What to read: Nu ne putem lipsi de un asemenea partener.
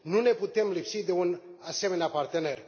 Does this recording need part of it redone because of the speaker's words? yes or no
no